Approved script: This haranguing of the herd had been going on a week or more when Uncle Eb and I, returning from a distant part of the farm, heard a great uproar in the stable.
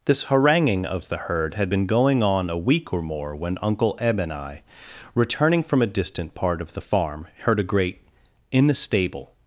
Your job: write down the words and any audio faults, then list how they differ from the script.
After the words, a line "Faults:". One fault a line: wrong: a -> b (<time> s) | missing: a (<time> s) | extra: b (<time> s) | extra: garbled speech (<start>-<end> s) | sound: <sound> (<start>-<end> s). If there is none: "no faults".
This haranguing of the herd had been going on a week or more when Uncle Eb and I, returning from a distant part of the farm, heard a great in the stable.
Faults:
missing: uproar (8.0 s)